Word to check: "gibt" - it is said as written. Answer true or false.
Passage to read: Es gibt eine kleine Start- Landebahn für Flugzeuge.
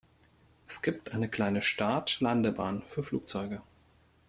true